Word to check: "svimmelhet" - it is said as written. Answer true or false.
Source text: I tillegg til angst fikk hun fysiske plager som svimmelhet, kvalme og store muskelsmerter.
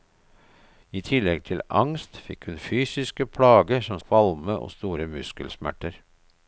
false